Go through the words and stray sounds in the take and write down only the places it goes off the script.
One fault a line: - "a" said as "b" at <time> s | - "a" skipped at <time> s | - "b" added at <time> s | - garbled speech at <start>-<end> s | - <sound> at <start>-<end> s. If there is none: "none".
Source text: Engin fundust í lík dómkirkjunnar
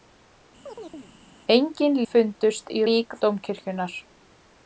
- chirp at 0.7-1.1 s